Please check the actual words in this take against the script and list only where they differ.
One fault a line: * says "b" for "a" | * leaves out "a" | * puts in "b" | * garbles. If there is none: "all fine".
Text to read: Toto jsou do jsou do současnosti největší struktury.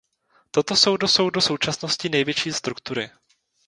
all fine